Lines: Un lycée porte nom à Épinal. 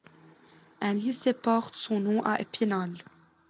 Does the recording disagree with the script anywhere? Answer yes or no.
yes